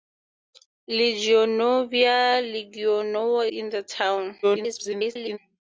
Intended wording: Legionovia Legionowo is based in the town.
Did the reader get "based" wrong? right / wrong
wrong